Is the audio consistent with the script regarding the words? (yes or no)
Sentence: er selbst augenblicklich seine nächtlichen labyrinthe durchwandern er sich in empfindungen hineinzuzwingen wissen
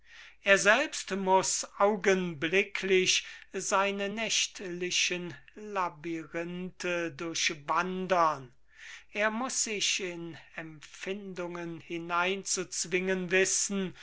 no